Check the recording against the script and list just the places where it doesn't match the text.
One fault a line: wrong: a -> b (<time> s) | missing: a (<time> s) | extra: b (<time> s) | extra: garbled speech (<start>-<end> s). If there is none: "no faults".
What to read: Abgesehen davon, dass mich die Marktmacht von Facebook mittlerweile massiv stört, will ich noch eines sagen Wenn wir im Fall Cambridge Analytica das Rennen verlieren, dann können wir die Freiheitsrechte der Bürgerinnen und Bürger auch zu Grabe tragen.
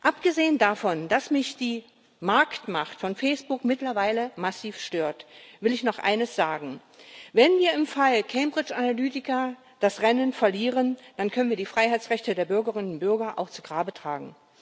no faults